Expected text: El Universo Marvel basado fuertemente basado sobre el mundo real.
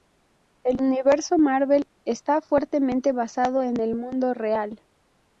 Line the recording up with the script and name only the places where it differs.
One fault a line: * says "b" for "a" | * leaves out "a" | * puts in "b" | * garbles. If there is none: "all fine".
* says "está" for "basado"
* says "en" for "sobre"